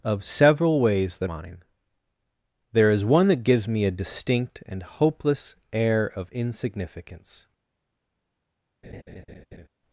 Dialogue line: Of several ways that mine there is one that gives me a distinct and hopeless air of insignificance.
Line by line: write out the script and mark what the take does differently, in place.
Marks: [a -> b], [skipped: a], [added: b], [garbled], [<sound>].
Of several ways that mine there is one that gives me a distinct and hopeless air of insignificance. [laugh]